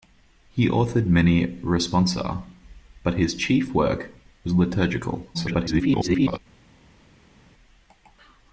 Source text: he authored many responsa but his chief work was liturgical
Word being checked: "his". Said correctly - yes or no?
yes